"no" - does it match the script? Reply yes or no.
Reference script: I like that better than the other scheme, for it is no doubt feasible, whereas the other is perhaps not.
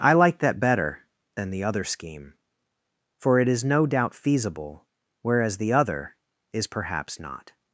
yes